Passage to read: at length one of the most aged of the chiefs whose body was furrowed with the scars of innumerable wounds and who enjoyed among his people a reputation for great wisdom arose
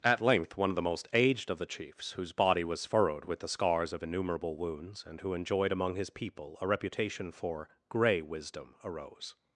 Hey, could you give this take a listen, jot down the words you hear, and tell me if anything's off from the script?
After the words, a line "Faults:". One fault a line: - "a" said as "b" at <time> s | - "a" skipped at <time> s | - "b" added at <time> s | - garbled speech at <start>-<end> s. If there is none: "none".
at length one of the most aged of the chiefs whose body was furrowed with the scars of innumerable wounds and who enjoyed among his people a reputation for grey wisdom arose
Faults:
- "great" said as "grey" at 7.9 s